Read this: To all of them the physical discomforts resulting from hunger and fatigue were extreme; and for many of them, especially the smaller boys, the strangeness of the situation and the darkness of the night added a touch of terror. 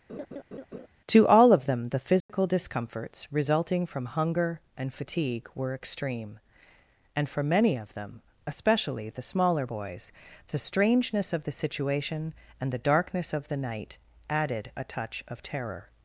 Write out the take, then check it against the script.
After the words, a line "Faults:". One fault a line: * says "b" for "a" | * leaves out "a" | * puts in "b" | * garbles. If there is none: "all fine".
To all of them the physical discomforts resulting from hunger and fatigue were extreme; and for many of them, especially the smaller boys, the strangeness of the situation and the darkness of the night added a touch of terror.
Faults:
all fine